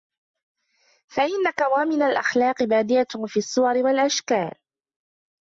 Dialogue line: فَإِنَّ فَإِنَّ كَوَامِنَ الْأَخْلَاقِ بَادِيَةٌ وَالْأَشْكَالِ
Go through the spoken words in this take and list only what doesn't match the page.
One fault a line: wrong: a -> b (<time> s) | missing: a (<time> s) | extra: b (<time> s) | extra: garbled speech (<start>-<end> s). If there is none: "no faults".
missing: فَإِنَّ (1.5 s)
extra: فِي الصُّوَرِ (3.3 s)